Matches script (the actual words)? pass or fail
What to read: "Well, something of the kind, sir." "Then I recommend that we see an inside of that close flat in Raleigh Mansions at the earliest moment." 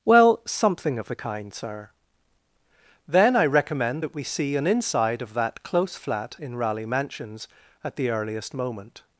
pass